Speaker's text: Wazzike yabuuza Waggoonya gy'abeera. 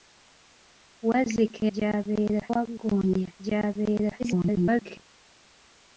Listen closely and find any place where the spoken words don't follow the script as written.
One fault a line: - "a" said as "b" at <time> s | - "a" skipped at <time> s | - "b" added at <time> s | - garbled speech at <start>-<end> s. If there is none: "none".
- "yabuuza" said as "gy'abeera" at 1.7 s
- garbled speech at 4.2-5.0 s